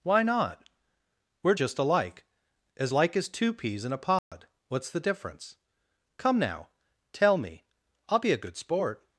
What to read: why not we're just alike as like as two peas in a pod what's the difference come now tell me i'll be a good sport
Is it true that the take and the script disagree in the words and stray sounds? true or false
true